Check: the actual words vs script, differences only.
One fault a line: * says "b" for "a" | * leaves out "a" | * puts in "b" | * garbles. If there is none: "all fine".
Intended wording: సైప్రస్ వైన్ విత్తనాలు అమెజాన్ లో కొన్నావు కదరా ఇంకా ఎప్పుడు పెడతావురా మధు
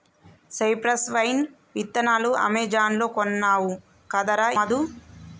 * leaves out "ఇంకా ఎప్పుడు పెడతావురా"